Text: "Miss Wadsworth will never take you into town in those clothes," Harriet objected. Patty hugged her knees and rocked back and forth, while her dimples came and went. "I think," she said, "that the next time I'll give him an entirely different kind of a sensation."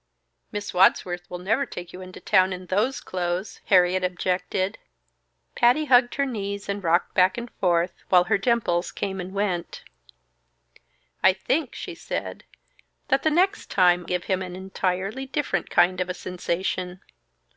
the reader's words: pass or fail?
fail